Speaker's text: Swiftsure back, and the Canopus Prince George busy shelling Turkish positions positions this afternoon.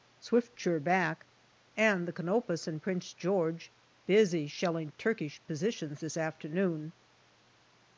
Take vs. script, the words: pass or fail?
fail